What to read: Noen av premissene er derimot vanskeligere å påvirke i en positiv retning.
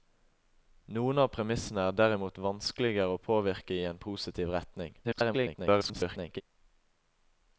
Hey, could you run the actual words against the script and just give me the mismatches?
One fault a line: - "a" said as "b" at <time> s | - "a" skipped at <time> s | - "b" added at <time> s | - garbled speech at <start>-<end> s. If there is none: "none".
- garbled speech at 5.0-6.4 s